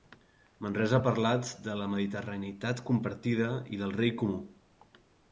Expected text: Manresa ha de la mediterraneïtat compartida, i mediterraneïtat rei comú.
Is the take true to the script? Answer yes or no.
no